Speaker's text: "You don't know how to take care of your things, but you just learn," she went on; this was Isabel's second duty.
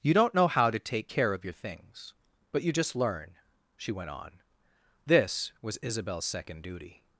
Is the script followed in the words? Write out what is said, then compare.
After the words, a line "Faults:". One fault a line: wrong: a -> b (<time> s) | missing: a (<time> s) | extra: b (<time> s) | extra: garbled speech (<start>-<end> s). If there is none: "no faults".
"You don't know how to take care of your things, but you just learn," she went on; this was Isabel's second duty.
Faults:
no faults